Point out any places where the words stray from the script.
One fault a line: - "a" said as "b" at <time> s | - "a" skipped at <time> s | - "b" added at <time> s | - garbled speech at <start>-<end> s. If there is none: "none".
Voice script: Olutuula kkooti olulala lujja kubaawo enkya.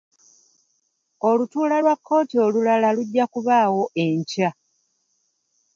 - "lwa" added at 1.8 s